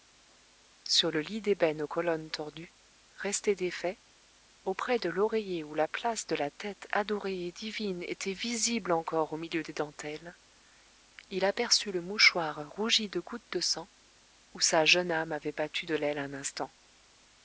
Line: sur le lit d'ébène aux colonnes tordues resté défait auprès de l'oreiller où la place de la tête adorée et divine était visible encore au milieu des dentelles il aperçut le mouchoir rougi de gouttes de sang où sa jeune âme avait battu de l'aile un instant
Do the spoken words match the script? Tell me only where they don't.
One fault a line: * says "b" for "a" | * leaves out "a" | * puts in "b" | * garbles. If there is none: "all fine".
all fine